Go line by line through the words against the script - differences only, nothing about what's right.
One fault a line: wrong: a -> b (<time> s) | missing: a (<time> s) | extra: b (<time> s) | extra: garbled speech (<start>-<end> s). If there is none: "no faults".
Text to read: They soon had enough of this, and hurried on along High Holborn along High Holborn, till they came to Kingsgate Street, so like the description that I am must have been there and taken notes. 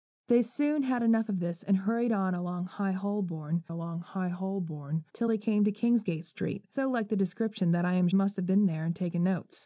no faults